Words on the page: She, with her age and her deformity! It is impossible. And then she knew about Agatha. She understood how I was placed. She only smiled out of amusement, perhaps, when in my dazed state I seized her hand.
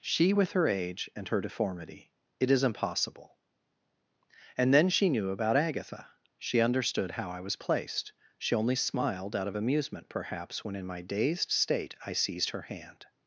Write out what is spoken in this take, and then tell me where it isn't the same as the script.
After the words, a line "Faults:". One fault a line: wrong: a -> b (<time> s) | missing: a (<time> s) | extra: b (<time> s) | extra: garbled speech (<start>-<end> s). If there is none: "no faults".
She, with her age and her deformity! It is impossible. And then she knew about Agatha. She understood how I was placed. She only smiled out of amusement, perhaps, when in my dazed state I seized her hand.
Faults:
no faults